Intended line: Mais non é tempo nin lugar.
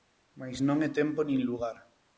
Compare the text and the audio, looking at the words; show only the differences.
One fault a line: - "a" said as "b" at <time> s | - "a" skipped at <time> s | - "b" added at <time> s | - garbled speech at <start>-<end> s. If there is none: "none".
none